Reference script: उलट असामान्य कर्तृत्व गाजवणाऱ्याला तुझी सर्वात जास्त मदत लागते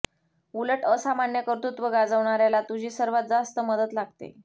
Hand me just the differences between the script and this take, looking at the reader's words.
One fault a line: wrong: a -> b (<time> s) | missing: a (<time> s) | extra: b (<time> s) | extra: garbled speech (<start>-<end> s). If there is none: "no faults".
no faults